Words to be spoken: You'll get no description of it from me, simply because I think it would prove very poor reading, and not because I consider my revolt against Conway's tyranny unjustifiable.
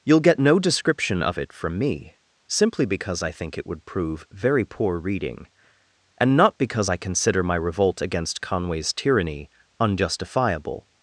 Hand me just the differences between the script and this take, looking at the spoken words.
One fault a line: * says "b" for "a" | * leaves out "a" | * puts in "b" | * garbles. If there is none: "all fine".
all fine